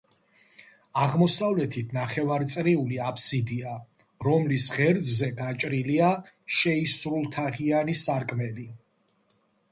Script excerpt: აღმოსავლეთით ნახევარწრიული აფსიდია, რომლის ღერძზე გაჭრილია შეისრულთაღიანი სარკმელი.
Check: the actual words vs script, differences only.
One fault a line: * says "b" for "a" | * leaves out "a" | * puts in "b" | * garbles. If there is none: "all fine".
all fine